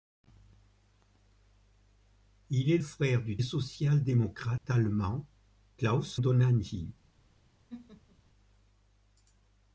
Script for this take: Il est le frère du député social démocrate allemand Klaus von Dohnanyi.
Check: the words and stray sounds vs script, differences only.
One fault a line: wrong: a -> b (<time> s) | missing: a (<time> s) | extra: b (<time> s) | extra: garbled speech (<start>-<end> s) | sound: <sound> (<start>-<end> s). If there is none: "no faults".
missing: le (2.8 s)
missing: député (3.4 s)
sound: dropout (4.6-4.6 s)
missing: von (6.2 s)
sound: laugh (7.7-8.2 s)